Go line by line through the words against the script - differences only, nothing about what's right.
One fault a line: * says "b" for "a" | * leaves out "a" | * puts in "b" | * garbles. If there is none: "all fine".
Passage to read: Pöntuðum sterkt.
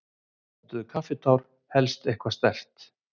* puts in "kaffitár helst eitthvað"